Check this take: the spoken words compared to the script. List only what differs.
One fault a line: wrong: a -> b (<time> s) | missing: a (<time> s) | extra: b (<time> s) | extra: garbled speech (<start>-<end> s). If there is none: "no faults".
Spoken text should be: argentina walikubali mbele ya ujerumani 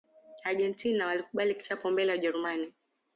extra: kichapo (1.6 s)